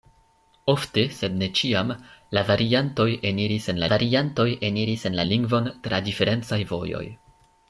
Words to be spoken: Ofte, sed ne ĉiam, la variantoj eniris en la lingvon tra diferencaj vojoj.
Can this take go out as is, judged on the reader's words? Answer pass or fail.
fail